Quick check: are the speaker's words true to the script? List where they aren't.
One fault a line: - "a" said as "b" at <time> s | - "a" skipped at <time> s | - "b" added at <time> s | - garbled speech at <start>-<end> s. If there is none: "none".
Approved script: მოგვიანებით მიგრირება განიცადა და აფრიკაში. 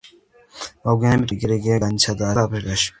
none